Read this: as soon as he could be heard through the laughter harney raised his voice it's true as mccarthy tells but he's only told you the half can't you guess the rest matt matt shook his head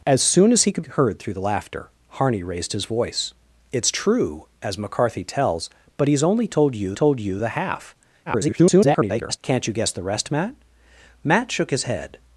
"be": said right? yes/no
no